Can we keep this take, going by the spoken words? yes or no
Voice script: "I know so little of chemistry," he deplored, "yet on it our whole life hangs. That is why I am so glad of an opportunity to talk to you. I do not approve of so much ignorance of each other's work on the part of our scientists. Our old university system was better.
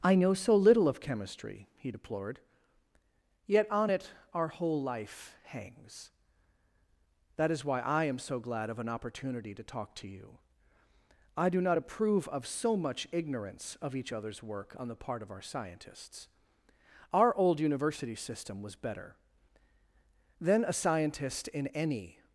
no